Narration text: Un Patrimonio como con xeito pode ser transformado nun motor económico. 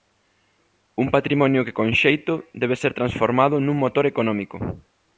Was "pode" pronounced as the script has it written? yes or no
no